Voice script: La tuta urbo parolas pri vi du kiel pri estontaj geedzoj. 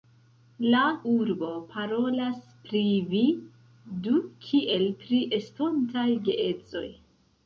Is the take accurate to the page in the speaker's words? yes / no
no